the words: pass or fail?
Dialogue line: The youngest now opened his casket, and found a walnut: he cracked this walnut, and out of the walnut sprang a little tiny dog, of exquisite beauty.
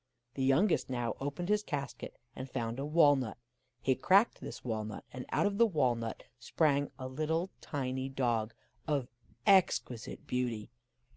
pass